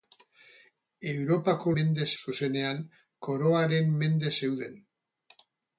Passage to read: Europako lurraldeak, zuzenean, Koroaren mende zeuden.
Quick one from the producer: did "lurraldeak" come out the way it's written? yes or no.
no